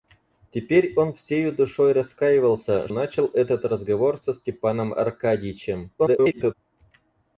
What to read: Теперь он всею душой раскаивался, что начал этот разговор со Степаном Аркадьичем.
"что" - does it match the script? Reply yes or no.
no